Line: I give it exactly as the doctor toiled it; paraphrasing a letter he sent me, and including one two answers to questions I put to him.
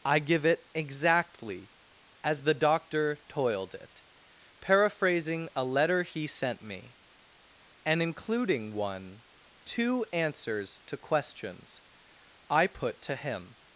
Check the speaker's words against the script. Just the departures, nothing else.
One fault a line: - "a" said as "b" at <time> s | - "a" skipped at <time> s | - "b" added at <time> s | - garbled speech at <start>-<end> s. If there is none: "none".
none